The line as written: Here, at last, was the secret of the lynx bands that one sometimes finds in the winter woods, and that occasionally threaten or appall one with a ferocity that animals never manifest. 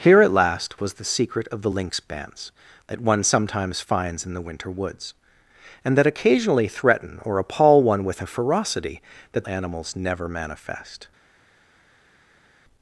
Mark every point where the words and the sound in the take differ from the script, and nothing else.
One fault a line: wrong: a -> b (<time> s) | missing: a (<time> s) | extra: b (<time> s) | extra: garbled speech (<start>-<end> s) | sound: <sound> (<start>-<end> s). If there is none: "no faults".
no faults